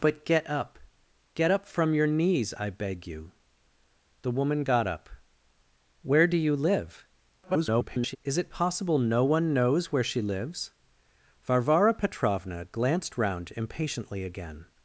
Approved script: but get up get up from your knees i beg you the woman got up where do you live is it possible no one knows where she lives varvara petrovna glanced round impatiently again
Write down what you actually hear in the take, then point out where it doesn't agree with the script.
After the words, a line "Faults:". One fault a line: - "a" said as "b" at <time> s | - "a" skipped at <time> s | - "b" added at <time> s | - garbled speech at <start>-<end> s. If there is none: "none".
but get up get up from your knees i beg you the woman got up where do you live [garbled] is it possible no one knows where she lives varvara petrovna glanced round impatiently again
Faults:
- garbled speech at 7.4-8.2 s